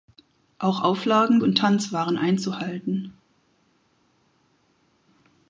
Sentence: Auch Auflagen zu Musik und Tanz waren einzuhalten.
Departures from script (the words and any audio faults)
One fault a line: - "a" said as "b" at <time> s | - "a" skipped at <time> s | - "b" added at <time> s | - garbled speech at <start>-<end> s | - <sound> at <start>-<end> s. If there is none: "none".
- "zu Musik" skipped at 1.4 s